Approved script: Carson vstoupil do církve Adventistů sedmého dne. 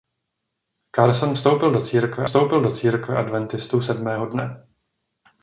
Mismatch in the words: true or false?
true